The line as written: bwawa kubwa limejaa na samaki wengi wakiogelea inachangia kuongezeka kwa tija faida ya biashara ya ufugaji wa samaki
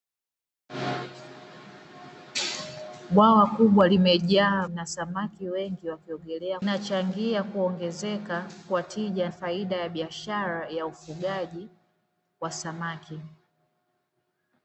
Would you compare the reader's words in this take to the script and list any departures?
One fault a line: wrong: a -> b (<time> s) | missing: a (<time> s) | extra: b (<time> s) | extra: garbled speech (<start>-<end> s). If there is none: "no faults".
no faults